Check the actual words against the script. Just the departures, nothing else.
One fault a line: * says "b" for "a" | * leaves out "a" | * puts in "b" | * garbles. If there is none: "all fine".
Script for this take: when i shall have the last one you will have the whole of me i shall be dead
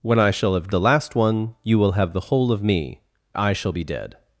all fine